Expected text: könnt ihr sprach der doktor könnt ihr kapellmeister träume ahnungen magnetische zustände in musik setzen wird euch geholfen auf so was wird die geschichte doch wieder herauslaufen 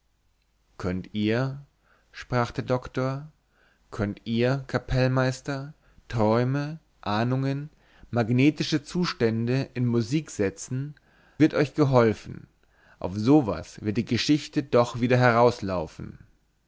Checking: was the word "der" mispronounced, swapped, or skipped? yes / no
no